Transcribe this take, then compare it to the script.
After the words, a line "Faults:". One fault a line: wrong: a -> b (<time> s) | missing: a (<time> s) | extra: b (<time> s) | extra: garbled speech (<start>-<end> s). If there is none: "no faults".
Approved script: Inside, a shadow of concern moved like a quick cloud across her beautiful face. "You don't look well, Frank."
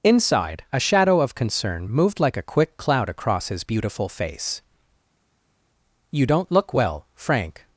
Inside, a shadow of concern moved like a quick cloud across his beautiful face. "You don't look well, Frank."
Faults:
wrong: her -> his (3.5 s)